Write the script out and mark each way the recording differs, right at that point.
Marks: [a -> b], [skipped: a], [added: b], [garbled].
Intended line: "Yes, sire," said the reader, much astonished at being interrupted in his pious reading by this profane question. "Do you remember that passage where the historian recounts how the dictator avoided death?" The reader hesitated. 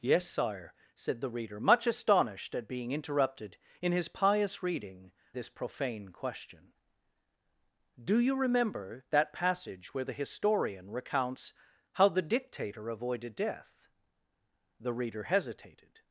"Yes, sire," said the reader, much astonished at being interrupted in his pious reading [skipped: by] this profane question. "Do you remember that passage where the historian recounts how the dictator avoided death?" The reader hesitated.